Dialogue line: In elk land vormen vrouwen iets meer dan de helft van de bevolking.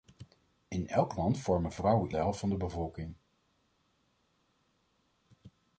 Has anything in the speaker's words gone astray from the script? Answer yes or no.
yes